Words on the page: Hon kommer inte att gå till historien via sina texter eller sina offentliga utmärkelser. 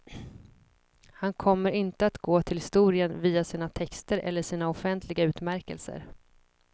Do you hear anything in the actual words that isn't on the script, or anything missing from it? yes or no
yes